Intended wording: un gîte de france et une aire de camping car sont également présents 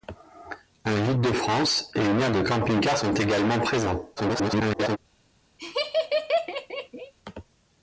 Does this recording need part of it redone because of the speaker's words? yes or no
yes